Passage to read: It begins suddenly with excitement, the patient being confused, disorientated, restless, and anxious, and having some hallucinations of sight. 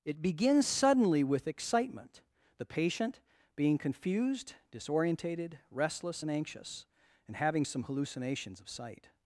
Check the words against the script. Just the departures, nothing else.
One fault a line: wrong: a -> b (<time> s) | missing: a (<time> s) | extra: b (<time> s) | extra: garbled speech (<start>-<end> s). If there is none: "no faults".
no faults